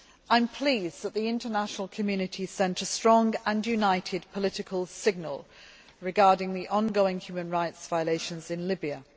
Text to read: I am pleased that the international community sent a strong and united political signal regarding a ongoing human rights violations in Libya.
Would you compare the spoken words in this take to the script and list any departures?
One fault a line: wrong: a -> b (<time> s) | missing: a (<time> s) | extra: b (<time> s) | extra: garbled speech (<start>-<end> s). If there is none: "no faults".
wrong: a -> the (6.5 s)